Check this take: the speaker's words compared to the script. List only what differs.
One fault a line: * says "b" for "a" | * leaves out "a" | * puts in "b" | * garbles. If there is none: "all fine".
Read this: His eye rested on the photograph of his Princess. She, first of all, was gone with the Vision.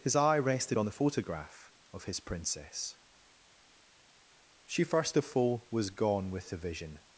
all fine